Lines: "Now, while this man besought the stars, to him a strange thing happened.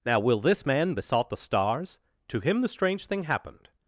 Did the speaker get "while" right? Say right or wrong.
wrong